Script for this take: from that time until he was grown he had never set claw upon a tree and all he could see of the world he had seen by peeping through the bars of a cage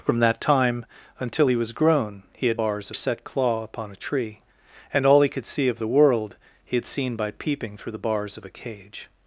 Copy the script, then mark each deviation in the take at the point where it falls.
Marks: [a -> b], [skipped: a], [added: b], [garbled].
from that time until he was grown he had [never -> bars] set claw upon a tree and all he could see of the world he had seen by peeping through the bars of a cage